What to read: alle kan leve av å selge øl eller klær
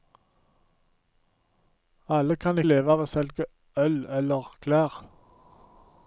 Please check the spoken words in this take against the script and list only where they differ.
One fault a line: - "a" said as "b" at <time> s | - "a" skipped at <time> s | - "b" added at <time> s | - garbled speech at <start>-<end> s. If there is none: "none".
none